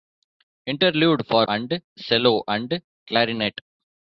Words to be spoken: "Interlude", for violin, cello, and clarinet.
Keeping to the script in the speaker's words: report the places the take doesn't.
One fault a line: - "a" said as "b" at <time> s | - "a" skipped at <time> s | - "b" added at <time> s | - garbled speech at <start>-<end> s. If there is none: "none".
- "violin" said as "and" at 1.5 s